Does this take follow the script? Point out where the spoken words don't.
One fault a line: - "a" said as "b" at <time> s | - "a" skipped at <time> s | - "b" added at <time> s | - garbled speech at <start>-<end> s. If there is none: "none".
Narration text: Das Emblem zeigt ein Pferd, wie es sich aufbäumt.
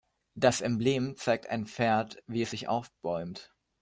none